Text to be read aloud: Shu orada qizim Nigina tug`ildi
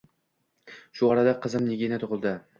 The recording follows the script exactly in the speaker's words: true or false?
true